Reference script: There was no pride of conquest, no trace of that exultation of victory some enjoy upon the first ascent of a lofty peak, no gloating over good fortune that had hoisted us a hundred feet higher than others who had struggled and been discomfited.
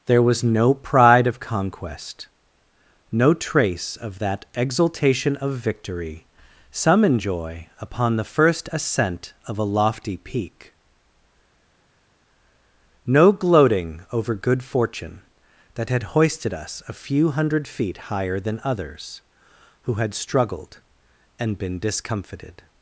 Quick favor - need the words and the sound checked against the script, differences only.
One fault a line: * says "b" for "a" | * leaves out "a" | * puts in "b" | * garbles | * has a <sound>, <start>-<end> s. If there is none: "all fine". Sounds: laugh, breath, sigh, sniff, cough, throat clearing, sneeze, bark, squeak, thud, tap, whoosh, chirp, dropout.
* puts in "few"